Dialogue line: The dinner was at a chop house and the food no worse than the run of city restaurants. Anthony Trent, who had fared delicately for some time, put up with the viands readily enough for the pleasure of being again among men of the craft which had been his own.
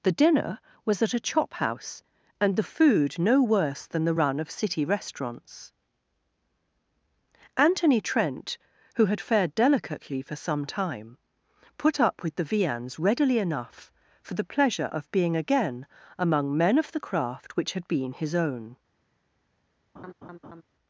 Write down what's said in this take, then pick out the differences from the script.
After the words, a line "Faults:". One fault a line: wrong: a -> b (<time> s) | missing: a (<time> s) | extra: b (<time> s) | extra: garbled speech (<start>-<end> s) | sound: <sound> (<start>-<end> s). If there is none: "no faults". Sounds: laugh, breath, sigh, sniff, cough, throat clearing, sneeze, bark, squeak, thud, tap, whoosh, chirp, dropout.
The dinner was at a chop house and the food no worse than the run of city restaurants. Anthony Trent, who had fared delicately for some time, put up with the viands readily enough for the pleasure of being again among men of the craft which had been his own.
Faults:
sound: laugh (19.9-20.6 s)